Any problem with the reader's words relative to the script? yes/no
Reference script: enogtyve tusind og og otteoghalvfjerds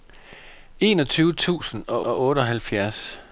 no